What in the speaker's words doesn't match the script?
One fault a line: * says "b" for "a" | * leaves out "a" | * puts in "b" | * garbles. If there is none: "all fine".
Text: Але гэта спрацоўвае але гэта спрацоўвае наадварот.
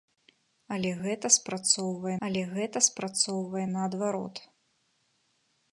all fine